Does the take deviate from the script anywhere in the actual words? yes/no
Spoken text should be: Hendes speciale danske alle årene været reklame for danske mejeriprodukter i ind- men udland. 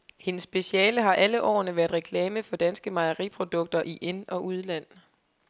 yes